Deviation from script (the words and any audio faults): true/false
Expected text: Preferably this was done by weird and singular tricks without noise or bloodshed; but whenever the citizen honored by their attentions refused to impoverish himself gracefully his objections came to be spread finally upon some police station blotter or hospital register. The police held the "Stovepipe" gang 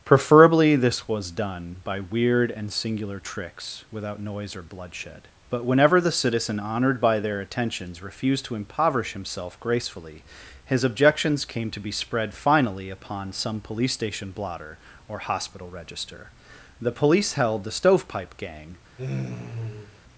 true